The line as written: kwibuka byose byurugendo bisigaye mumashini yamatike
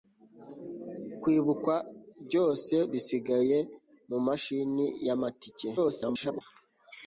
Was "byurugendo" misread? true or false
true